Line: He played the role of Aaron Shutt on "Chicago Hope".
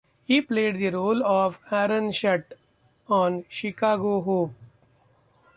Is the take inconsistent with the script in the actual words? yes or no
no